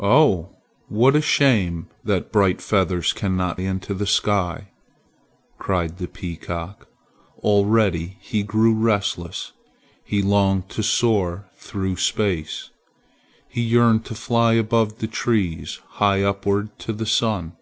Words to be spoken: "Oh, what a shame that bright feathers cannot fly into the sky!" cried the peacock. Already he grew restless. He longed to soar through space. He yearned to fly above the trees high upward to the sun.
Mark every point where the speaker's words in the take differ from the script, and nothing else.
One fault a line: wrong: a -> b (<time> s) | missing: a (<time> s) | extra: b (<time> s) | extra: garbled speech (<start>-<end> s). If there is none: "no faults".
missing: fly (3.6 s)